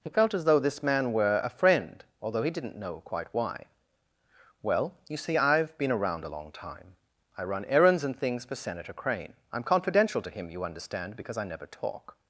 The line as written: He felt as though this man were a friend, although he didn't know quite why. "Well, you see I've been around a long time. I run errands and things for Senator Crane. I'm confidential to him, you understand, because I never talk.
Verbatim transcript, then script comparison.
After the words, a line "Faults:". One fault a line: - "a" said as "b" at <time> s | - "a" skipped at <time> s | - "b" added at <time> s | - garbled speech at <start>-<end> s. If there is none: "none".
He felt as though this man were a friend, although he didn't know quite why. "Well, you see I've been around a long time. I run errands and things for Senator Crane. I'm confidential to him, you understand, because I never talk.
Faults:
none